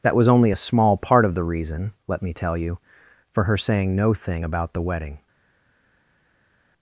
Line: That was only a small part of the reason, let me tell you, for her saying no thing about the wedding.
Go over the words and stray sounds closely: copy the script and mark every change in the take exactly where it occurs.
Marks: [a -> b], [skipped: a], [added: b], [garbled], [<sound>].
That was only a small part of the reason, let me tell you, for her saying no thing about the wedding.